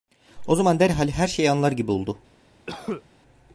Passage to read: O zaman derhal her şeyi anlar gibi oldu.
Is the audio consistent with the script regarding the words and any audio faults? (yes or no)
no